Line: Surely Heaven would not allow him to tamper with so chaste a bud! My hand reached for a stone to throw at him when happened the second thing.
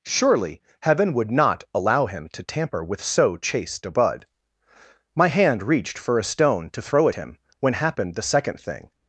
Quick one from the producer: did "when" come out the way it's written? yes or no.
yes